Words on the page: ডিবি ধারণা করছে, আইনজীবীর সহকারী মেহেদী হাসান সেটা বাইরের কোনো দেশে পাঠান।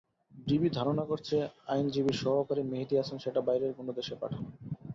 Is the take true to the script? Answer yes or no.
yes